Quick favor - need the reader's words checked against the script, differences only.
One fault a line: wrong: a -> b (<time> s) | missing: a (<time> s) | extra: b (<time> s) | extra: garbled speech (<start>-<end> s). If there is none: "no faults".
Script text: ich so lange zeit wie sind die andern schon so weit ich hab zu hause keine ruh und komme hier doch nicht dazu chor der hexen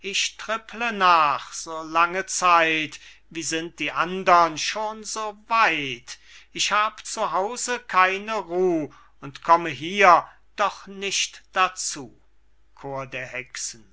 extra: tripple nach (0.4 s)